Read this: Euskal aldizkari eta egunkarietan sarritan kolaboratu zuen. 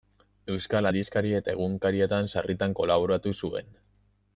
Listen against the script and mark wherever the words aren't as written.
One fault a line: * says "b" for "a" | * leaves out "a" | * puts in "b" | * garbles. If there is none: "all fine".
all fine